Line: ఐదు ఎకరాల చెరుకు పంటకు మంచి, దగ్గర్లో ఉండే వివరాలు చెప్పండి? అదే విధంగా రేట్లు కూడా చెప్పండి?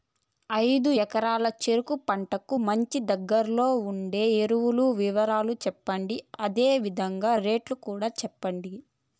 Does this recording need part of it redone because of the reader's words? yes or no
yes